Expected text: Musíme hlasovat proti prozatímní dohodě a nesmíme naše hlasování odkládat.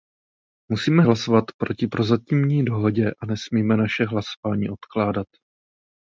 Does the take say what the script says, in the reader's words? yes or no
yes